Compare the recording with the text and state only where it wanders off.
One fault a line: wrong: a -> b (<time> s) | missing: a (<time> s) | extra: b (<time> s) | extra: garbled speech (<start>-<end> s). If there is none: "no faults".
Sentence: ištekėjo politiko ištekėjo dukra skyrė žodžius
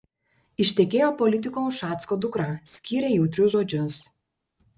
wrong: ištekėjo -> ušacko (1.7 s)
extra: jautrius (3.2 s)